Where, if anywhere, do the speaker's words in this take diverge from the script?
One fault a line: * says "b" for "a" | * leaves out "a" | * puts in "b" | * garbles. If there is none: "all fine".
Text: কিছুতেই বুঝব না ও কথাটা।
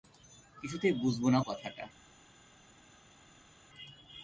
* leaves out "ও"